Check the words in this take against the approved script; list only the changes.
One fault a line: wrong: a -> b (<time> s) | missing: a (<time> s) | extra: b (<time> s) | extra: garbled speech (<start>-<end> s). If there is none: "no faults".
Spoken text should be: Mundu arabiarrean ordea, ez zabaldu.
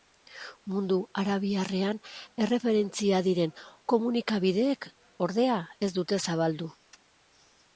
extra: erreferentzia diren komunikabideek (2.5 s)
extra: dute (6.0 s)